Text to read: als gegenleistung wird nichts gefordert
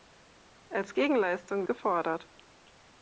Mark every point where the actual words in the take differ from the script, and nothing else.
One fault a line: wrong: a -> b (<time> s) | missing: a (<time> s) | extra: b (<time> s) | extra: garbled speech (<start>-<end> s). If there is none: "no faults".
missing: wird nichts (1.7 s)